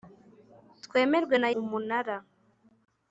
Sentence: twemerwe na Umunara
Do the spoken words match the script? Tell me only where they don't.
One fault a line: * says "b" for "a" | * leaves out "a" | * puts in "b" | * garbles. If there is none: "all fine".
all fine